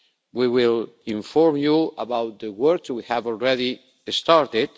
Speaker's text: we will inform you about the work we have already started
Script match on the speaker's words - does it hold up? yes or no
yes